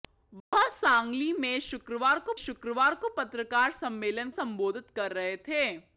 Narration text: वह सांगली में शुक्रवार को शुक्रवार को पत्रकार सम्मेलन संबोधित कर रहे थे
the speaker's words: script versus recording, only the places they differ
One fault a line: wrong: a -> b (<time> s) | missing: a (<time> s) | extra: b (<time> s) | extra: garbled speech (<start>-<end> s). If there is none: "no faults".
no faults